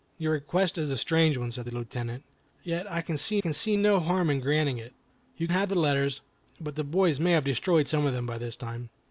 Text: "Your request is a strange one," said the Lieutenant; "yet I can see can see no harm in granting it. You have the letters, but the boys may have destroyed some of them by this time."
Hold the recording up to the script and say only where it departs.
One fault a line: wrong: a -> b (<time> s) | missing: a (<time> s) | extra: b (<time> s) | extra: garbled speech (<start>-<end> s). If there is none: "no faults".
no faults